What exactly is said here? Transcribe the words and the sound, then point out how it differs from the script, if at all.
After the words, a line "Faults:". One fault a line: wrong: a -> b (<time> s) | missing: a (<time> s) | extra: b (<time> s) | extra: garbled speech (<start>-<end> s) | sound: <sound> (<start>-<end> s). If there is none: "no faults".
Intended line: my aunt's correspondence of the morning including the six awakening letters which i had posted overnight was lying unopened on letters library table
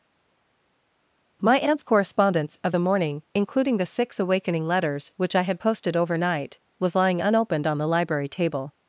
my aunt's correspondence of the morning including the six awakening letters which i had posted overnight was lying unopened on the library table
Faults:
wrong: letters -> the (7.8 s)